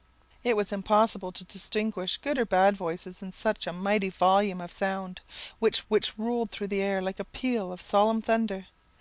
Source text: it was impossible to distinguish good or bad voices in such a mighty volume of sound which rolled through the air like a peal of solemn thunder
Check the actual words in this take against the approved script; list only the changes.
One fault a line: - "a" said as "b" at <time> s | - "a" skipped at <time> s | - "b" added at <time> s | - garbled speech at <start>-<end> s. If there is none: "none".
- "which" added at 5.9 s